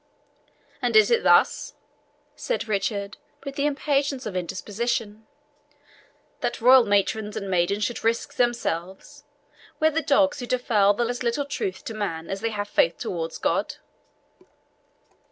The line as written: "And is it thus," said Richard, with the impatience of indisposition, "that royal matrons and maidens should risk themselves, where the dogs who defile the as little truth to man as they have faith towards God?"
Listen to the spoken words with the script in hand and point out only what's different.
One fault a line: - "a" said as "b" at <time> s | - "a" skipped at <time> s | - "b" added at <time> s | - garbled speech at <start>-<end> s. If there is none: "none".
none